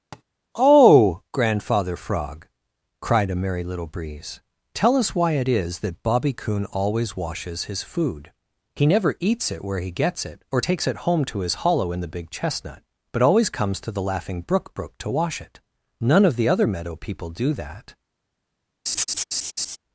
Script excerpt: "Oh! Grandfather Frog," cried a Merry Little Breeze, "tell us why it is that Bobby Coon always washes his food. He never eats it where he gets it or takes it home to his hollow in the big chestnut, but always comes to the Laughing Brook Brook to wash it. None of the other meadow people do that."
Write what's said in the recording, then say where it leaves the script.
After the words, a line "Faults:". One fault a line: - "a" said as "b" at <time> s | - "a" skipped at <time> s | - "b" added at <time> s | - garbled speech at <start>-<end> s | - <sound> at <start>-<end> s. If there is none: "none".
"Oh! Grandfather Frog," cried a Merry Little Breeze, "tell us why it is that Bobby Coon always washes his food. He never eats it where he gets it or takes it home to his hollow in the big chestnut, but always comes to the Laughing Brook Brook to wash it. None of the other meadow people do that."
Faults:
- tap at 0.1-0.2 s
- laugh at 18.9-19.8 s